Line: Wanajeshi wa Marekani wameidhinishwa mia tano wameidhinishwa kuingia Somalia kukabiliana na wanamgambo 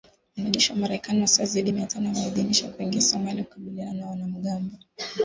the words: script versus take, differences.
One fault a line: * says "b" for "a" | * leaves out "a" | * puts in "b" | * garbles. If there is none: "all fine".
* says "wasiozidi" for "wameidhinishwa"